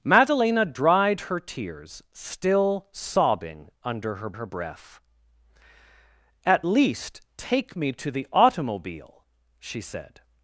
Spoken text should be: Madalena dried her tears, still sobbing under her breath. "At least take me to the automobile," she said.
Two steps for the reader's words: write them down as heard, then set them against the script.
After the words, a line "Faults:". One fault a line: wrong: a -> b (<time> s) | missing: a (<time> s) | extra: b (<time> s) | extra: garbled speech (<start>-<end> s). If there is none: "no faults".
Madalena dried her tears, still sobbing under her her breath. "At least take me to the automobile," she said.
Faults:
extra: her (4.3 s)